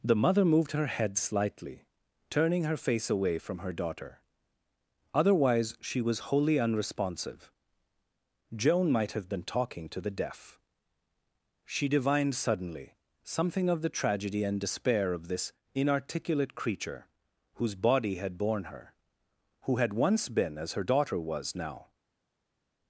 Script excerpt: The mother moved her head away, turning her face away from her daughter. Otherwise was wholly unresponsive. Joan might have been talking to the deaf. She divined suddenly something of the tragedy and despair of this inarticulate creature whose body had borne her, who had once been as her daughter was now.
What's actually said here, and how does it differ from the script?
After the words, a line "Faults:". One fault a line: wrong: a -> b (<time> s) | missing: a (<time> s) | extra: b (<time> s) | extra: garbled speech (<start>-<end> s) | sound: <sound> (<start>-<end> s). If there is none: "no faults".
The mother moved her head slightly, turning her face away from her daughter. Otherwise she was wholly unresponsive. Joan might have been talking to the deaf. She divined suddenly something of the tragedy and despair of this inarticulate creature whose body had borne her, who had once been as her daughter was now.
Faults:
wrong: away -> slightly (1.2 s)
extra: she (5.8 s)